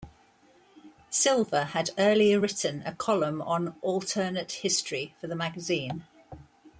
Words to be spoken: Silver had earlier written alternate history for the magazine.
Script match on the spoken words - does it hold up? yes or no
no